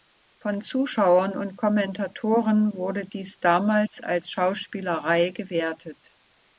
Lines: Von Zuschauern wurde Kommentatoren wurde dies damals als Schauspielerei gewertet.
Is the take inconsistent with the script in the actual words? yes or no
yes